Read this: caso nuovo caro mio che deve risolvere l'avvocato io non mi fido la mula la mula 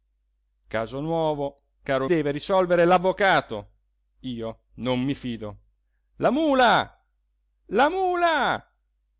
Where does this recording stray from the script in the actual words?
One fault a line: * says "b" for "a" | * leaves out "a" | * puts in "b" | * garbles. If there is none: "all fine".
* leaves out "mio che"